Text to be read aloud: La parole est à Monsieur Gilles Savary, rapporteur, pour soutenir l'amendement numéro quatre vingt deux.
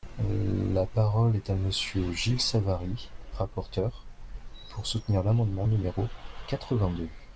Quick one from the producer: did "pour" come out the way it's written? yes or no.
yes